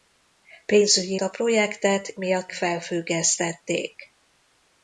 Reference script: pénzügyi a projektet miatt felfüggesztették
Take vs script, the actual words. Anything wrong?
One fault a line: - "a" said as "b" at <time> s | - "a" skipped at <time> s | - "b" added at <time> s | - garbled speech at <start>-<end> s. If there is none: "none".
none